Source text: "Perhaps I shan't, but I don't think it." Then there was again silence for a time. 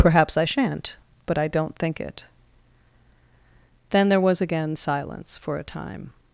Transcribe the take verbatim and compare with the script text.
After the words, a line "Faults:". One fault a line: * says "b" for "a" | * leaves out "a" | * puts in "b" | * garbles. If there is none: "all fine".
"Perhaps I shan't, but I don't think it." Then there was again silence for a time.
Faults:
all fine